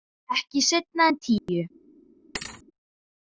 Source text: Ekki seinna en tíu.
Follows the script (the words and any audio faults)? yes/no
no